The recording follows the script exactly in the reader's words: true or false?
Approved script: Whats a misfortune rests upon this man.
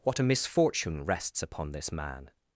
false